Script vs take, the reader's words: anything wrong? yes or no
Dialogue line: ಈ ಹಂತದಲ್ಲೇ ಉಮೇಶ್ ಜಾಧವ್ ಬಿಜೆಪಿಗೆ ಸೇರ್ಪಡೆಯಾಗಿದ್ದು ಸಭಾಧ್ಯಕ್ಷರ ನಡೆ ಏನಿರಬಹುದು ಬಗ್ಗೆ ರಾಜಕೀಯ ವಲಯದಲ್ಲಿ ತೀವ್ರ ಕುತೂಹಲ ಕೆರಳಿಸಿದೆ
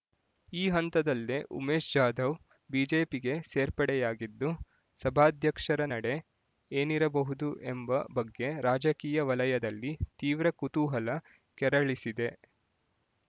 yes